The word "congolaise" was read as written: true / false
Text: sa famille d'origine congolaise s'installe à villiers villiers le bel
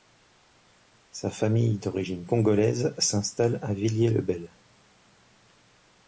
true